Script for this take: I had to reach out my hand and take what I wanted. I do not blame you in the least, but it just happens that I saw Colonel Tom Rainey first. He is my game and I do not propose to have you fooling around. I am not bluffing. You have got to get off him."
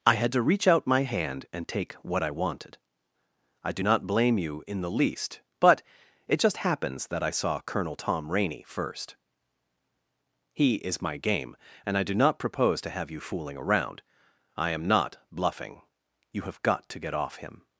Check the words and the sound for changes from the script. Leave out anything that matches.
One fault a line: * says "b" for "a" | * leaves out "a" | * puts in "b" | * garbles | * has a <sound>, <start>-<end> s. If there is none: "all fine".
all fine